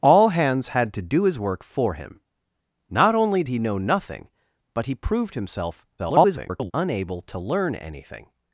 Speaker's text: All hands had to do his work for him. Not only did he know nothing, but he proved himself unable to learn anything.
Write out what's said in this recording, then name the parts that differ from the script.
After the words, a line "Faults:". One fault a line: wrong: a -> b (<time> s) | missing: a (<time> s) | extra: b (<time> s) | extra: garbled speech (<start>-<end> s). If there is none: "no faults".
All hands had to do his work for him. Not only he know nothing, but he proved himself [garbled] unable to learn anything.
Faults:
missing: did (3.4 s)
extra: garbled speech (6.0-6.7 s)